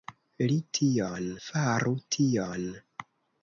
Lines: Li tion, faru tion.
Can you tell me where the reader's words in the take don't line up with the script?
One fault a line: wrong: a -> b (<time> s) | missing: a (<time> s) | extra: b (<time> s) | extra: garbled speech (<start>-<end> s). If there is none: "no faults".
no faults